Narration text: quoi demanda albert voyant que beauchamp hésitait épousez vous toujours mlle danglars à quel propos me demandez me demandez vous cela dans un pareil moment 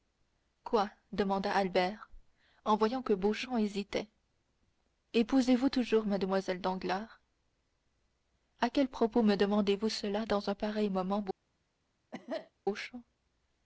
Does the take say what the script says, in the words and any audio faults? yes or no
no